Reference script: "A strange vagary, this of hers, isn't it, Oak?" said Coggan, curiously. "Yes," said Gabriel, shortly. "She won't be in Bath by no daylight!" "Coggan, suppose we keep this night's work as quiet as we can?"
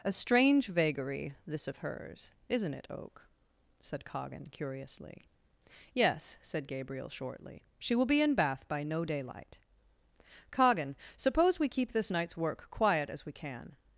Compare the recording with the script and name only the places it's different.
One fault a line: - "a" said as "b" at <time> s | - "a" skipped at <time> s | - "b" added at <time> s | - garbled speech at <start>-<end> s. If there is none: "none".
- "won't" said as "will" at 8.0 s
- "as" skipped at 12.7 s